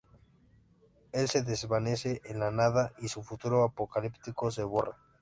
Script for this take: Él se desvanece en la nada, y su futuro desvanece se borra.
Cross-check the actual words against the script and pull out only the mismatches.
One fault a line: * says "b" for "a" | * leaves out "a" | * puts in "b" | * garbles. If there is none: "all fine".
* says "apocalíptico" for "desvanece"